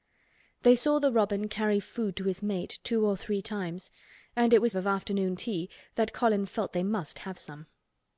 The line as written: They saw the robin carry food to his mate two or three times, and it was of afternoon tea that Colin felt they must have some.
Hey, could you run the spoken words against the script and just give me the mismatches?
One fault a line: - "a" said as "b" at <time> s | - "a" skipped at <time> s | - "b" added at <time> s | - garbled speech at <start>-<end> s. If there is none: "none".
none